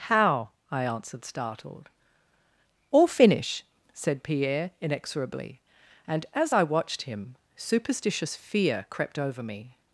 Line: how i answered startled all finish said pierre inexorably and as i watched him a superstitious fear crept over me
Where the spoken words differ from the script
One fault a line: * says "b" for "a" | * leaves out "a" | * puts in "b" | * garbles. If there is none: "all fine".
* leaves out "a"